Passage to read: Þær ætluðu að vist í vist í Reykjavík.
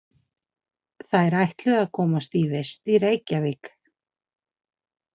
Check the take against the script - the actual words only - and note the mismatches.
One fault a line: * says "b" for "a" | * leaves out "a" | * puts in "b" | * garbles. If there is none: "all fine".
* says "komast" for "vist"